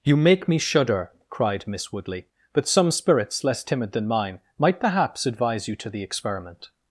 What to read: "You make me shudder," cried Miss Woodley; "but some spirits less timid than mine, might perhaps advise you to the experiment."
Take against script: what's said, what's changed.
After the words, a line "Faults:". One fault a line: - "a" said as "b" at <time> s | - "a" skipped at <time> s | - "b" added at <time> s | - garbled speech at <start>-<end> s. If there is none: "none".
"You make me shudder," cried Miss Woodley; "but some spirits less timid than mine, might perhaps advise you to the experiment."
Faults:
none